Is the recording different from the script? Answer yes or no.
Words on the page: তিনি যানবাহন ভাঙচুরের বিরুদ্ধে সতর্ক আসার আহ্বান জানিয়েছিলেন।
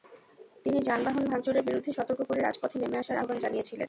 yes